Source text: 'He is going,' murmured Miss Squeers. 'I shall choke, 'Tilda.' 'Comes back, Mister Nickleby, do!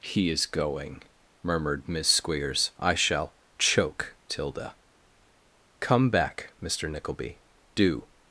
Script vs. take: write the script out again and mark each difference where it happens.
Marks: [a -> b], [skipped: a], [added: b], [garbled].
'He is going,' murmured Miss Squeers. 'I shall choke, 'Tilda.' ['Comes -> Come] back, Mister Nickleby, do!